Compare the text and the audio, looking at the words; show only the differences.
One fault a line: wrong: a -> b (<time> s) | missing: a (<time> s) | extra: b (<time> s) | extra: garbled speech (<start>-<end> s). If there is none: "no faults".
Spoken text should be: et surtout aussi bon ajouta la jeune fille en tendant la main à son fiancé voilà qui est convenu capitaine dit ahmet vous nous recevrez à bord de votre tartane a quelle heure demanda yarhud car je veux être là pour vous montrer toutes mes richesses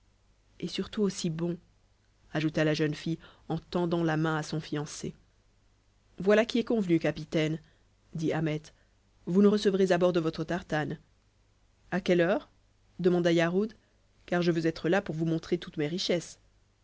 no faults